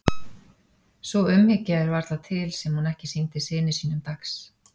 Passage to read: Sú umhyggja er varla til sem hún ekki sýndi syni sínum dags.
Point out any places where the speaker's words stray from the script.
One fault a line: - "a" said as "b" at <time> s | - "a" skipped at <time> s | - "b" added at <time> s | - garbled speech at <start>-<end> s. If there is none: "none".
none